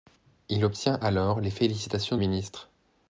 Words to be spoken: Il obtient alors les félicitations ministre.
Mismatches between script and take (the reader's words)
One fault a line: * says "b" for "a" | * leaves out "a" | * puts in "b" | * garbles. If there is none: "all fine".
all fine